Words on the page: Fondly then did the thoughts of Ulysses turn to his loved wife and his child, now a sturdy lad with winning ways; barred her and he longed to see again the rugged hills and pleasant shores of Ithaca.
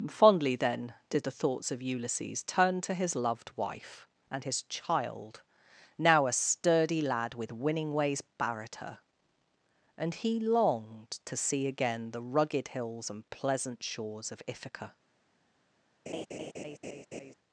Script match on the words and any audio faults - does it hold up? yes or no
no